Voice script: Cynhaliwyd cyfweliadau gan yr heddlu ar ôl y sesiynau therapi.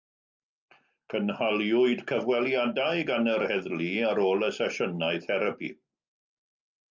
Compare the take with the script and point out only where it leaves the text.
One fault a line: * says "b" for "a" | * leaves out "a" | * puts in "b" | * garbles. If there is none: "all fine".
all fine